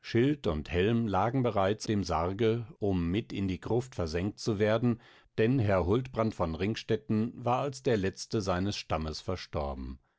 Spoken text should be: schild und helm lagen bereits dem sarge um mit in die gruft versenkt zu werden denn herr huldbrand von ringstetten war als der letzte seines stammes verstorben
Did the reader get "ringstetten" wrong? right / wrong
right